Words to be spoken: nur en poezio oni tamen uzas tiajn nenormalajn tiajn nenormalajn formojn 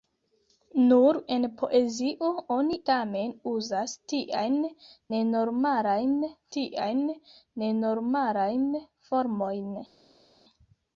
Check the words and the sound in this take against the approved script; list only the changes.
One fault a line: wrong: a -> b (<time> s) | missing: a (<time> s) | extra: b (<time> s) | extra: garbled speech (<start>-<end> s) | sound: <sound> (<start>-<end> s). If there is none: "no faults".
no faults